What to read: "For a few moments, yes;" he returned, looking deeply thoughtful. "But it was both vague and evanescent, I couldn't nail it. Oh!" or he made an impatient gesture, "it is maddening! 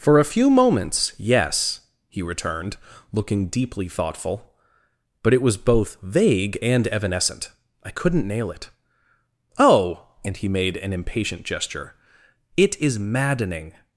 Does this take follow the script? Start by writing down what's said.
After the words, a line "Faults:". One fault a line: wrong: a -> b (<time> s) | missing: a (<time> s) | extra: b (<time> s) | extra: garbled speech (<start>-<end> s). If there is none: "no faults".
"For a few moments, yes;" he returned, looking deeply thoughtful. "But it was both vague and evanescent, I couldn't nail it. Oh!" and he made an impatient gesture, "it is maddening!
Faults:
wrong: or -> and (10.2 s)